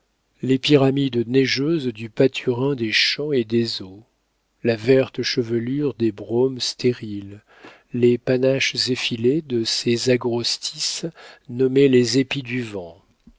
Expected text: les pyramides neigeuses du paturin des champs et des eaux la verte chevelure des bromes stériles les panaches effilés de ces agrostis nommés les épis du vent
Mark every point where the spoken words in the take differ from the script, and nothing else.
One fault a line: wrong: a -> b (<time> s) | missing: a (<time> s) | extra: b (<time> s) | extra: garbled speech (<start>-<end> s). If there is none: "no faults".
no faults